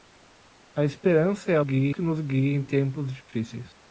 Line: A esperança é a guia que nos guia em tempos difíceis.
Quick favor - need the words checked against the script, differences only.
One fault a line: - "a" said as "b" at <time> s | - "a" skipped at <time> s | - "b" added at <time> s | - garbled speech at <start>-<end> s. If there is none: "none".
none